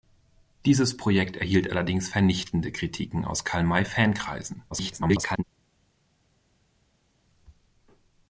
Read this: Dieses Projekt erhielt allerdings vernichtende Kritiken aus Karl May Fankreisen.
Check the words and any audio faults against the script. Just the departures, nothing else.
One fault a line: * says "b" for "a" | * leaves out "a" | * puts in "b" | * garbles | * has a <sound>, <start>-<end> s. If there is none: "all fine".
* garbles